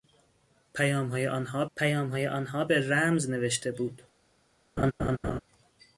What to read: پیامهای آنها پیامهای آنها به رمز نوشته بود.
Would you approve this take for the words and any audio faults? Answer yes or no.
no